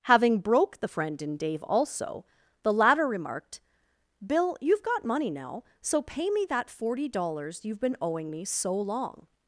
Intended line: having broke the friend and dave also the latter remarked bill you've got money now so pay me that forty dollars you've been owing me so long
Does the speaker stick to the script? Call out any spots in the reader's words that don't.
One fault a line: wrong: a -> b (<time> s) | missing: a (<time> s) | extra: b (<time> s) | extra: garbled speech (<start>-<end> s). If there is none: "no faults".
wrong: and -> in (1.2 s)